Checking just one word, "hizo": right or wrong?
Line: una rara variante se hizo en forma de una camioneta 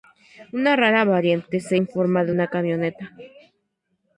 wrong